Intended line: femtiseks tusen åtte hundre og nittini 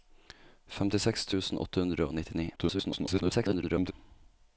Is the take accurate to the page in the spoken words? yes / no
no